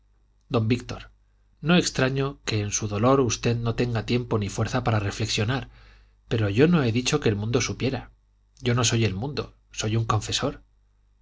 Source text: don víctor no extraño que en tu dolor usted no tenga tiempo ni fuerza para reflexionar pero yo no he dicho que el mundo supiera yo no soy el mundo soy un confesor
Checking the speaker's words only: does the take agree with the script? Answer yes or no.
no